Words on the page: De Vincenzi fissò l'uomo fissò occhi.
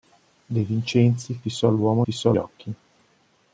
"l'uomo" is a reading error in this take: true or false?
false